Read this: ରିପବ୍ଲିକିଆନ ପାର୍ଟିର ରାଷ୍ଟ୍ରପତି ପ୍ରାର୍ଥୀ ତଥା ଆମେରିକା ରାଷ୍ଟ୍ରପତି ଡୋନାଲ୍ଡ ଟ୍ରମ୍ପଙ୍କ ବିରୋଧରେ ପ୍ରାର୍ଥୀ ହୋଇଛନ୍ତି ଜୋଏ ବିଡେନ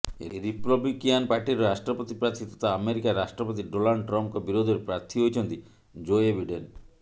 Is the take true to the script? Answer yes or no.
yes